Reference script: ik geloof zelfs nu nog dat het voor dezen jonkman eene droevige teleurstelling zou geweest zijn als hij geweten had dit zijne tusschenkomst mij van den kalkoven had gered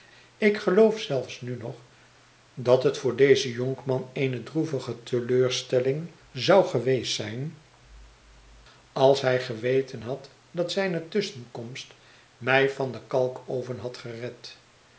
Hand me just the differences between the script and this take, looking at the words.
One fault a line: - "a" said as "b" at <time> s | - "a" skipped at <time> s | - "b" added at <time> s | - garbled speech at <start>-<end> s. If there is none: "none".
- "dit" said as "dat" at 10.5 s